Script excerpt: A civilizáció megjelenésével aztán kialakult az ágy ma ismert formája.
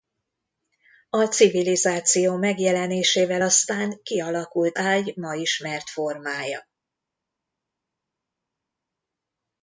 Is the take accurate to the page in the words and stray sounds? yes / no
no